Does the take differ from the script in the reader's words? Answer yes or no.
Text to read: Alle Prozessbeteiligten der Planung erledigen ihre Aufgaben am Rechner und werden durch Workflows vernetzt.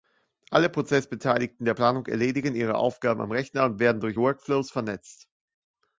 no